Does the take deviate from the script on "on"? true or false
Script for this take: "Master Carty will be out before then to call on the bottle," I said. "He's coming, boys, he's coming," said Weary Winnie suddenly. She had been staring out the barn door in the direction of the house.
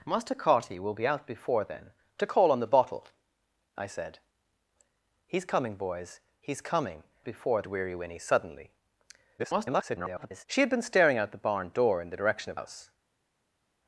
false